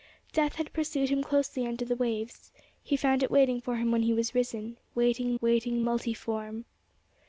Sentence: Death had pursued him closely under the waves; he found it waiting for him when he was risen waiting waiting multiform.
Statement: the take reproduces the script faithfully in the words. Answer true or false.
true